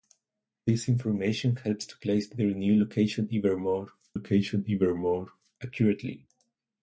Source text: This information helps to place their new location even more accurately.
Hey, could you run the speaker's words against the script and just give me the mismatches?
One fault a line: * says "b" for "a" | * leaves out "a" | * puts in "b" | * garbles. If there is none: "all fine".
* puts in "location even more"